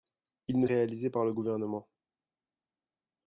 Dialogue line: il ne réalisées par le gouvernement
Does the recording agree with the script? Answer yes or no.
yes